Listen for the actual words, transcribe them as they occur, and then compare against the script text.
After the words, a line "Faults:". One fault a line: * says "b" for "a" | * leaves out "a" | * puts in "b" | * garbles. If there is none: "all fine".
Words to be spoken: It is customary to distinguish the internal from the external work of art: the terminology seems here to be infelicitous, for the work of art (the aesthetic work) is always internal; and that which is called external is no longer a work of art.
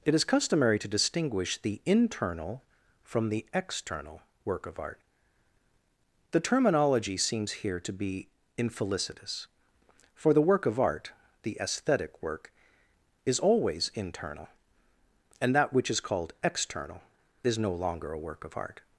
It is customary to distinguish the internal from the external work of art: the terminology seems here to be infelicitous, for the work of art (the aesthetic work) is always internal; and that which is called external is no longer a work of art.
Faults:
all fine